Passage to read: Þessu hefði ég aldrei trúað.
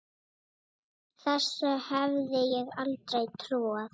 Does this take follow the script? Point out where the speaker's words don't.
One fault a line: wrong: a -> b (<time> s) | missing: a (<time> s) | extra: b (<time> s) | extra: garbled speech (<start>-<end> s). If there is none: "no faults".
no faults